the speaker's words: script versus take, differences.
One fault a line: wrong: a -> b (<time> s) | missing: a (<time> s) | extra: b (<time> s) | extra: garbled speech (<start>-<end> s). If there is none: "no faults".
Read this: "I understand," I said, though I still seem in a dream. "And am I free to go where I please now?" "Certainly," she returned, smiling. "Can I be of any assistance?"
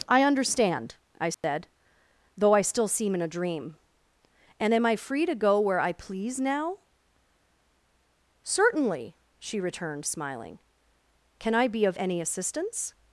no faults